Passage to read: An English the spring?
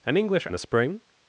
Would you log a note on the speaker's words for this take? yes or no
no